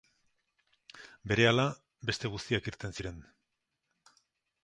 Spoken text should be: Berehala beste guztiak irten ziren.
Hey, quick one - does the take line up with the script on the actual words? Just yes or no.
yes